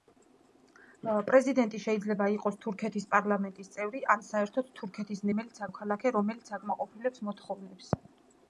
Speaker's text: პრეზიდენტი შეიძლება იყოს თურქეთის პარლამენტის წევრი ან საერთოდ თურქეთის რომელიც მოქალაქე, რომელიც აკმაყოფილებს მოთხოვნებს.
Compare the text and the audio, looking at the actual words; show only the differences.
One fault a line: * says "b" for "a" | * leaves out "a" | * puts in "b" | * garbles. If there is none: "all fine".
all fine